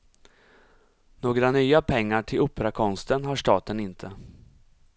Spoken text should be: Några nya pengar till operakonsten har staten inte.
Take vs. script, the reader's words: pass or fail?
pass